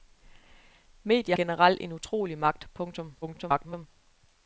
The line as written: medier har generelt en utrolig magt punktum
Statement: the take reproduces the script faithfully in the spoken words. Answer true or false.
false